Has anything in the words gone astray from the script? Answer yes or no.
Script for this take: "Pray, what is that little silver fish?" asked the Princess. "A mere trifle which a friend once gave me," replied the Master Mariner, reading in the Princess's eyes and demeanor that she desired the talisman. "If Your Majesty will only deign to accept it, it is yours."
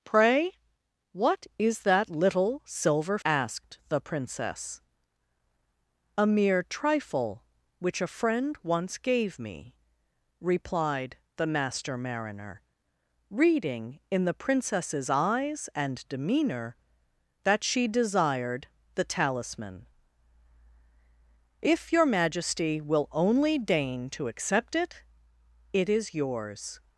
yes